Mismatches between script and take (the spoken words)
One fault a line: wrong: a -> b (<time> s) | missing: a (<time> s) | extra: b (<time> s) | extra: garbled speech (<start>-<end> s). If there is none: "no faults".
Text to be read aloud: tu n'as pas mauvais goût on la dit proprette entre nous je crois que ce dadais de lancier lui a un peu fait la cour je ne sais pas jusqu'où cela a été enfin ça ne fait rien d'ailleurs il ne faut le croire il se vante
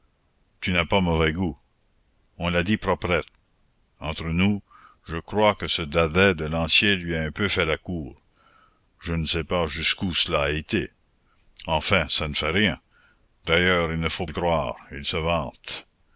no faults